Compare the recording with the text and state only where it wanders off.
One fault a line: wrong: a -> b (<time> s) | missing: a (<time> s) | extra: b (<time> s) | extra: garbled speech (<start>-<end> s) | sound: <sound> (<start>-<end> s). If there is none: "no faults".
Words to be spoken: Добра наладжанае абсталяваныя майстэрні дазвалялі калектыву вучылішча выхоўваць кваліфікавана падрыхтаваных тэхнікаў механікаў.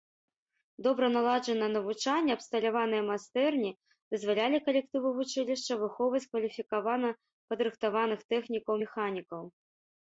extra: навучанне (1.8 s)